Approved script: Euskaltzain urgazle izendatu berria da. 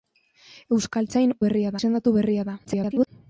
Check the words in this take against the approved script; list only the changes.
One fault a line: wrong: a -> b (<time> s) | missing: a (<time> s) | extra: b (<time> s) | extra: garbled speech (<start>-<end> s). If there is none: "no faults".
wrong: urgazle -> berria (1.4 s)
extra: garbled speech (2.6-3.1 s)